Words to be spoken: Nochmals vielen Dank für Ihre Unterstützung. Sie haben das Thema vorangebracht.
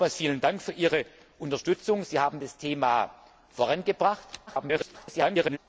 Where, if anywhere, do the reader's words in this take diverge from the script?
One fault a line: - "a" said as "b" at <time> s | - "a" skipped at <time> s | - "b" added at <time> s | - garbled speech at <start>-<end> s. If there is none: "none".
- garbled speech at 4.5-5.6 s